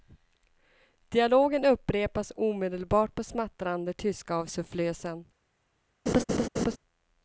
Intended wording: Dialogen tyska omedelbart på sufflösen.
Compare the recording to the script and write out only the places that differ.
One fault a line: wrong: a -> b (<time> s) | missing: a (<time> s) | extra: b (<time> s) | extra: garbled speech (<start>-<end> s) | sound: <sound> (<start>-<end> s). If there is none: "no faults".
wrong: tyska -> upprepas (1.6 s)
extra: smattrande tyska av (3.2 s)
sound: laugh (6.1-6.8 s)